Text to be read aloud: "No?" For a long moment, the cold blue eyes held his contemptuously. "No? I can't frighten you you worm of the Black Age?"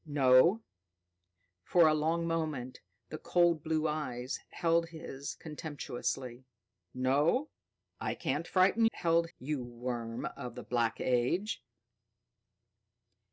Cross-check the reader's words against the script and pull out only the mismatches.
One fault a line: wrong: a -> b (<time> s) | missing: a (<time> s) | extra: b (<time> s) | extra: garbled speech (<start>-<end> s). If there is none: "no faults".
wrong: you -> held (8.9 s)